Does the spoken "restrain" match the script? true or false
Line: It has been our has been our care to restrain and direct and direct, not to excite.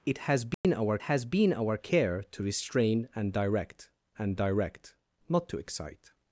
true